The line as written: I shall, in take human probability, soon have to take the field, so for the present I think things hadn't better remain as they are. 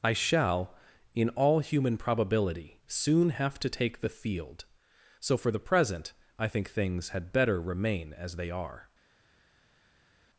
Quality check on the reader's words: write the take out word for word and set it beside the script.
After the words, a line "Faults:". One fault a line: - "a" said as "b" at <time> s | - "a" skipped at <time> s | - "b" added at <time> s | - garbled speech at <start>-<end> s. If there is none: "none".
I shall, in all human probability, soon have to take the field, so for the present I think things had better remain as they are.
Faults:
- "take" said as "all" at 1.3 s
- "hadn't" said as "had" at 7.1 s